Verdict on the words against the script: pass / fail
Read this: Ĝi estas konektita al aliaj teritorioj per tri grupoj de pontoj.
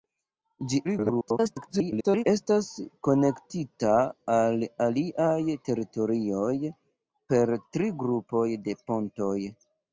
fail